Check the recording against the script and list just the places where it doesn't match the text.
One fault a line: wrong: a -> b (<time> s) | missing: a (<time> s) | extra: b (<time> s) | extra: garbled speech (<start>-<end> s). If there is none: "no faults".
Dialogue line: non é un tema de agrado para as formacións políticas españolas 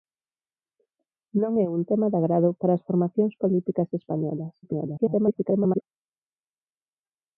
extra: garbled speech (4.6-5.8 s)